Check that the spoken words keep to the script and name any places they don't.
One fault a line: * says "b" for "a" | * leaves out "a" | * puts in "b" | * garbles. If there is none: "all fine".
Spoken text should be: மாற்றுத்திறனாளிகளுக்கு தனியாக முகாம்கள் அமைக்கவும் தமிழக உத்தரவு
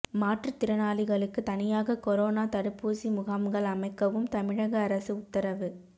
* puts in "கொரோனா தடுப்பூசி"
* puts in "அரசு"